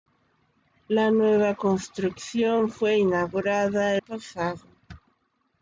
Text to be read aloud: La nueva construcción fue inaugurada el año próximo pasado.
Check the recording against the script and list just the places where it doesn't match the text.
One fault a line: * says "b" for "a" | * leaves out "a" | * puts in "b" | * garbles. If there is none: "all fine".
* leaves out "el año próximo"